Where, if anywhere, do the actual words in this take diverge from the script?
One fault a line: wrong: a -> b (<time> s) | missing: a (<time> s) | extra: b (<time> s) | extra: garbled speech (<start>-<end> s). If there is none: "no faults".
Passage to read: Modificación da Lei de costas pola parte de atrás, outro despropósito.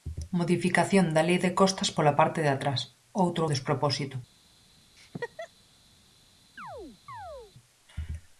no faults